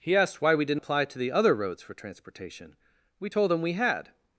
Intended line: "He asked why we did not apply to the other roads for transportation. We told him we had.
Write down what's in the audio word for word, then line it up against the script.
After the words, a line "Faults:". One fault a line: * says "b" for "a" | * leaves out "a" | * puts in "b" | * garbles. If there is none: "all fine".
"He asked why we did apply to the other roads for transportation. We told him we had.
Faults:
* leaves out "not"